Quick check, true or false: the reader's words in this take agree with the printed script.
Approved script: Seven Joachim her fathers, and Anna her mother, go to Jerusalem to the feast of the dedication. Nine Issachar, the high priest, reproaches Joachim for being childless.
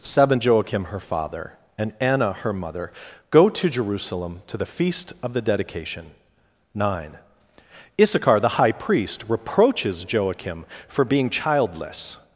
false